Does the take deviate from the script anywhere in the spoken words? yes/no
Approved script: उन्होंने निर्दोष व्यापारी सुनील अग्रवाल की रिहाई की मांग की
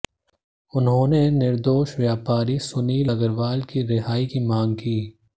no